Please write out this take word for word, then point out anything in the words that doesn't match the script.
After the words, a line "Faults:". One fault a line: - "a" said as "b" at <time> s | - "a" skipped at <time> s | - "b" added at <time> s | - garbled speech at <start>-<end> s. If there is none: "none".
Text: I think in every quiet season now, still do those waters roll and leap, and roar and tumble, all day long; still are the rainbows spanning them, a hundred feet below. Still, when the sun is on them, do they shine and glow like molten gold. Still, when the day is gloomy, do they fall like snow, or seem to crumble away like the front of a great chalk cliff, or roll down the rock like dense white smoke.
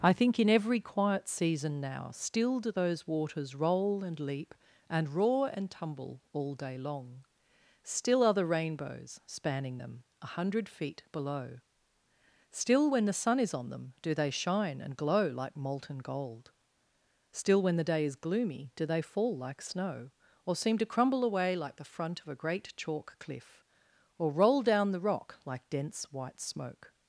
I think in every quiet season now, still do those waters roll and leap, and roar and tumble, all day long; still are the rainbows spanning them, a hundred feet below. Still, when the sun is on them, do they shine and glow like molten gold. Still, when the day is gloomy, do they fall like snow, or seem to crumble away like the front of a great chalk cliff, or roll down the rock like dense white smoke.
Faults:
none